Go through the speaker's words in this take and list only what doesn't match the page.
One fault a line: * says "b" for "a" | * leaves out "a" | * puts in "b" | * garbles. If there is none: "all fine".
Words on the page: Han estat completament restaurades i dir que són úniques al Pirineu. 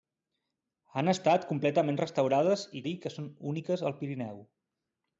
all fine